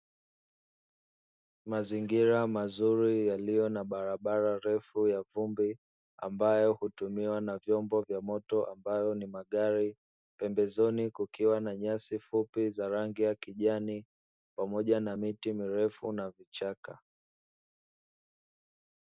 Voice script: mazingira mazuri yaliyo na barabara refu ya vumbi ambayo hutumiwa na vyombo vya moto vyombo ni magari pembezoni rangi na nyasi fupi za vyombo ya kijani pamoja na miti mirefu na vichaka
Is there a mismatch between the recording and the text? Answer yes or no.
yes